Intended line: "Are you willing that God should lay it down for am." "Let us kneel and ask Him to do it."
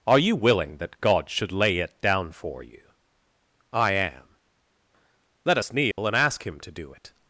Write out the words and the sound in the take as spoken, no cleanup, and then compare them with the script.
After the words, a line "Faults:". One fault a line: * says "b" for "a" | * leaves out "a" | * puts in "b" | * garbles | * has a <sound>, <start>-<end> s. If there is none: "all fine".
"Are you willing that God should lay it down for you?" "I am." "Let us kneel and ask Him to do it."
Faults:
* puts in "you I"
* has a dropout, 5.9-6.0 s